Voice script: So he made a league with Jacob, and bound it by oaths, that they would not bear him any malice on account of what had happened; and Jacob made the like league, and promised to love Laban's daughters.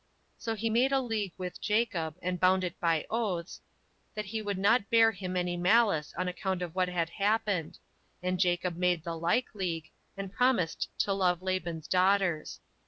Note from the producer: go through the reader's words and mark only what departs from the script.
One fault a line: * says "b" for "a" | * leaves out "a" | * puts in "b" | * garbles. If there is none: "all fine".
* says "he" for "they"